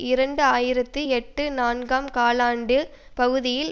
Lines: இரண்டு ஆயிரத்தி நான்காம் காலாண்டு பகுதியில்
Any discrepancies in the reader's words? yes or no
yes